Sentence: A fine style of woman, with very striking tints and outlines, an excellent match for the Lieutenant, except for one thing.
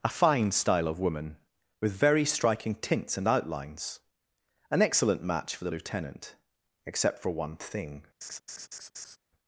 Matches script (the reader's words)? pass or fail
pass